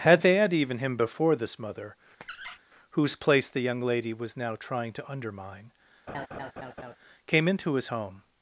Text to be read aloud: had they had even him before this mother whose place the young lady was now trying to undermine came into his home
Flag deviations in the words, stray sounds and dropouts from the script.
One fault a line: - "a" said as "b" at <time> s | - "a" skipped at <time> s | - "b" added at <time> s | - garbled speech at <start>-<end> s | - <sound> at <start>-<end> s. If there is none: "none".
- squeak at 2.2-2.6 s
- laugh at 6.1-7.0 s